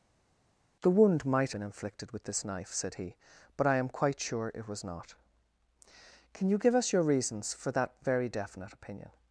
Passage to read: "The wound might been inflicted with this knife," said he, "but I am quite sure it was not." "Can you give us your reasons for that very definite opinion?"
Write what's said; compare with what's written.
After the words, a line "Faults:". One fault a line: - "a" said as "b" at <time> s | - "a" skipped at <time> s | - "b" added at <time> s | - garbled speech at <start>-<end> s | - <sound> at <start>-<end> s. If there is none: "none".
"The wound might been inflicted with this knife," said he, "but I am quite sure it was not." "Can you give us your reasons for that very definite opinion?"
Faults:
none